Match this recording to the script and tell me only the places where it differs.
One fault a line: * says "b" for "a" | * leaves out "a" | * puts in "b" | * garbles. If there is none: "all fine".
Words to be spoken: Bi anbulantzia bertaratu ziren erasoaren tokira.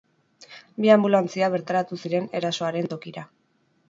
all fine